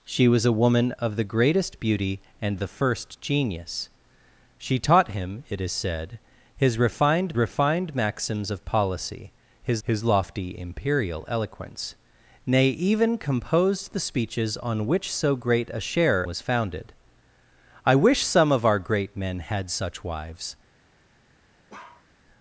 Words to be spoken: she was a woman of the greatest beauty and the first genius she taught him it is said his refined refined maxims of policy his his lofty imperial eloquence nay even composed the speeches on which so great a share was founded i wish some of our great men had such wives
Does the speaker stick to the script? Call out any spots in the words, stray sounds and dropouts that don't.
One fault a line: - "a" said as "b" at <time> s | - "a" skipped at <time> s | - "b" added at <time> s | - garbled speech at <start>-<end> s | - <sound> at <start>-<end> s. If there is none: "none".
- bark at 21.7-22.1 s